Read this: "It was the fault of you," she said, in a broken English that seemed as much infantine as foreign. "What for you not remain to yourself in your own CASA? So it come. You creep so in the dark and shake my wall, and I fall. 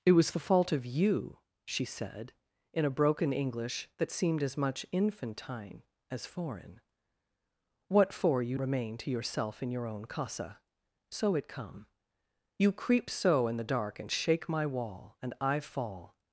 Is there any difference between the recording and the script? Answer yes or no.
yes